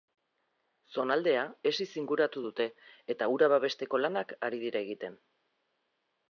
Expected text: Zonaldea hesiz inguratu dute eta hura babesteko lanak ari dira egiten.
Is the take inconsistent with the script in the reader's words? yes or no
no